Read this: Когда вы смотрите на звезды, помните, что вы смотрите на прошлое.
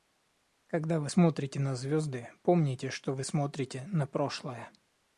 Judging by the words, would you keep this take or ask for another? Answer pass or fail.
pass